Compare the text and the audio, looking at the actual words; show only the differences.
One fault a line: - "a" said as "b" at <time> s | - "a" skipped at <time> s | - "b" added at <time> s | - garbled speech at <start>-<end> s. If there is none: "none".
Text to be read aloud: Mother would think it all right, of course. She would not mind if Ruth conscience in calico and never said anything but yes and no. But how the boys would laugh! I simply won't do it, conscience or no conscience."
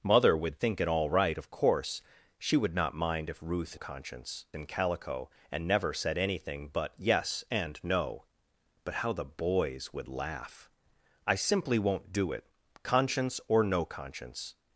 none